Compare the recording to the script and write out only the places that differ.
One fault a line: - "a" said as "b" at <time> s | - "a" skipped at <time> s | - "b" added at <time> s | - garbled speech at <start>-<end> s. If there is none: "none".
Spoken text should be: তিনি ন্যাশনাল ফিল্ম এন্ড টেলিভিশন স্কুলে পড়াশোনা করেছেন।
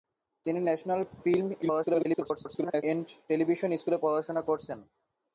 - garbled speech at 1.6-2.8 s